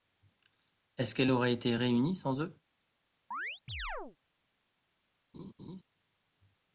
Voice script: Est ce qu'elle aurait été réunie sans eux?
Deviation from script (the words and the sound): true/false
true